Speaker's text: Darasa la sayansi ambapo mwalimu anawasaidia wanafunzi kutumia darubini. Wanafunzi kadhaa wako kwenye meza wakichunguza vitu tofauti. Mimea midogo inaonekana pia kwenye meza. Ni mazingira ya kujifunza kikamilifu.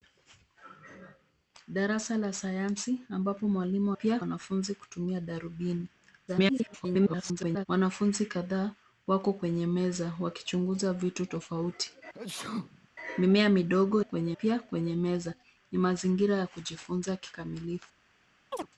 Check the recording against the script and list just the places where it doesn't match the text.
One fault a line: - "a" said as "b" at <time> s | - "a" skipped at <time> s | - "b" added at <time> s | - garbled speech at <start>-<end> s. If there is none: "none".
- "anawasaidia" said as "pia" at 3.9 s
- garbled speech at 6.3-7.7 s
- "inaonekana" said as "kwenye" at 14.0 s